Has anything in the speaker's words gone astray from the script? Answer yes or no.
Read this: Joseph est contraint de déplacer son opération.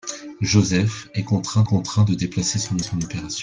yes